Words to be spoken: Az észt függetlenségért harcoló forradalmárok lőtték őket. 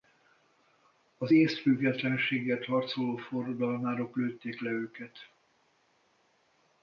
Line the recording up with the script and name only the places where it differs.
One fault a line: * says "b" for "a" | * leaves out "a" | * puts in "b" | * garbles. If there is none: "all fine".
* puts in "le"